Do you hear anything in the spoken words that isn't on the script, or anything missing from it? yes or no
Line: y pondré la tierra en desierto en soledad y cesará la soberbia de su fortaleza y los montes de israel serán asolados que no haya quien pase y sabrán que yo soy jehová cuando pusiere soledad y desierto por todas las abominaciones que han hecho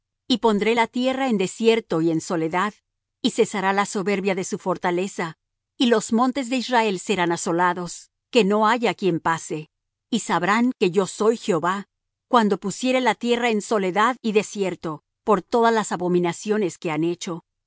yes